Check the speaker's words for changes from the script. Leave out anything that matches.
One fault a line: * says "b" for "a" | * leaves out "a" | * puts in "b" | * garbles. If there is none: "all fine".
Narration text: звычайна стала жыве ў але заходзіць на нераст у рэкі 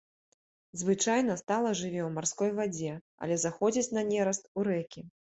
* puts in "марской вадзе"